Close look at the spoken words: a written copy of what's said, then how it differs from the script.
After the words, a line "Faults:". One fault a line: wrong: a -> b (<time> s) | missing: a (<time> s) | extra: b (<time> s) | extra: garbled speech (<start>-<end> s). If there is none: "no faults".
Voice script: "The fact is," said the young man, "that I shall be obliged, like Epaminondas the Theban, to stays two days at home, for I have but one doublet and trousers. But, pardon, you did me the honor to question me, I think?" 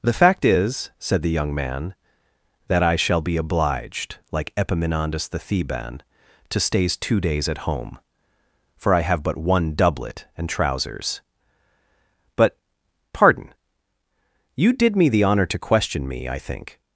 "The fact is," said the young man, "that I shall be obliged, like Epaminondas the Theban, to stays two days at home, for I have but one doublet and trousers. But, pardon, you did me the honor to question me, I think?"
Faults:
no faults